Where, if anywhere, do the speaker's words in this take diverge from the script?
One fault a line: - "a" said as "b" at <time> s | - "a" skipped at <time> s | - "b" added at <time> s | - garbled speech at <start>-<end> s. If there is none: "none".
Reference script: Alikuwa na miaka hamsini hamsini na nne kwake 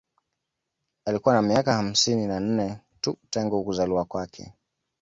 - "hamsini" skipped at 2.3 s
- "tu tangu kuzaliwa" added at 3.0 s